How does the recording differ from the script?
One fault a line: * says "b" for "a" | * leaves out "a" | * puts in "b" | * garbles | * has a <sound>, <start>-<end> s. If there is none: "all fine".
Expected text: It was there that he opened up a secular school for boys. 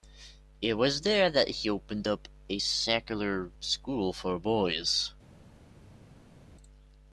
all fine